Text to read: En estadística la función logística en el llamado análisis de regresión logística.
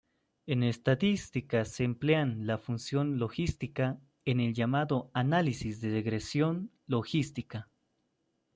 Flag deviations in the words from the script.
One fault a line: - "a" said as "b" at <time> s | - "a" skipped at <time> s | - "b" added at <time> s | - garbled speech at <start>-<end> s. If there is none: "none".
- "se emplean" added at 1.6 s